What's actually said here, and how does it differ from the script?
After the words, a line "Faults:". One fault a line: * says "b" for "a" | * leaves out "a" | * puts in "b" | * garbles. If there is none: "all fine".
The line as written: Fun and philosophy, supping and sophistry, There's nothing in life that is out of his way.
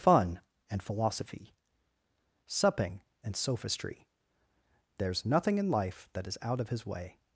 Fun and philosophy, supping and sophistry, There's nothing in life that is out of his way.
Faults:
all fine